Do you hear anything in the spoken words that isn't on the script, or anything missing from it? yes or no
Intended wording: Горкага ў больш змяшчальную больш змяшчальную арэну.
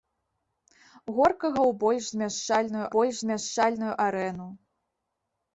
no